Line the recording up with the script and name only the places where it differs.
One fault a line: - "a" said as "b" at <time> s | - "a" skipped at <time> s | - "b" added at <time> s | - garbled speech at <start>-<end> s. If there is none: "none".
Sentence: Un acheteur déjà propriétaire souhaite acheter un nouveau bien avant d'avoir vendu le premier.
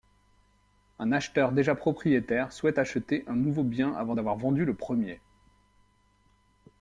none